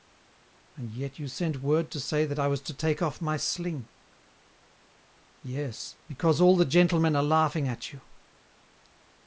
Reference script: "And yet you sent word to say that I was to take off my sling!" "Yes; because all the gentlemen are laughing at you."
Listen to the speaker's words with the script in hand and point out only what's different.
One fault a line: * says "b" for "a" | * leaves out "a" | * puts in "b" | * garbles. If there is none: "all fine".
all fine